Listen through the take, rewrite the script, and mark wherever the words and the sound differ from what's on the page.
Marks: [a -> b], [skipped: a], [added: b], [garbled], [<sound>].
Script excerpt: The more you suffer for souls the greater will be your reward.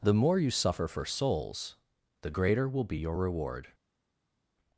The more you suffer for souls the greater will be your reward.